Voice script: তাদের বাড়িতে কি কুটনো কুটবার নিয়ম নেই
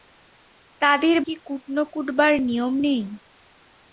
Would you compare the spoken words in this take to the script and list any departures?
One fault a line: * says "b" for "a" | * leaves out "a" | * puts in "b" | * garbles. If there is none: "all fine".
* leaves out "বাড়িতে"